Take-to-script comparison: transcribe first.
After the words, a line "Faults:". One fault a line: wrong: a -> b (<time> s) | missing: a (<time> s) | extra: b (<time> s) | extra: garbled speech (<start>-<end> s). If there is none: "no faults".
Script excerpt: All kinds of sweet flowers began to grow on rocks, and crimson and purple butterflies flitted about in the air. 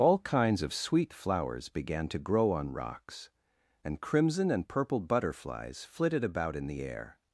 All kinds of sweet flowers began to grow on rocks, and crimson and purple butterflies flitted about in the air.
Faults:
no faults